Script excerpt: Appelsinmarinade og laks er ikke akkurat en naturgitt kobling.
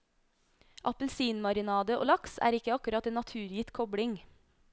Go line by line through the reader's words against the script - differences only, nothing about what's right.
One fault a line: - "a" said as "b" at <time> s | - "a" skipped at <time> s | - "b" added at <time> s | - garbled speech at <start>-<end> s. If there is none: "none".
none